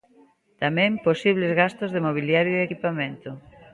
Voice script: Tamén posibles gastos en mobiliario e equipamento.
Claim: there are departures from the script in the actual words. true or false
true